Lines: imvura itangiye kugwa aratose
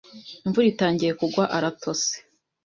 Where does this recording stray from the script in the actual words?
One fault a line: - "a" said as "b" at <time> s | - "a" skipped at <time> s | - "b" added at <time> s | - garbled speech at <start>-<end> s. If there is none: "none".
none